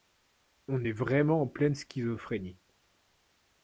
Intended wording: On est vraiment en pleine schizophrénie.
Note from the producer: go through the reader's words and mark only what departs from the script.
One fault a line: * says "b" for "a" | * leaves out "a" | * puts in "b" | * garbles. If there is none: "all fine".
all fine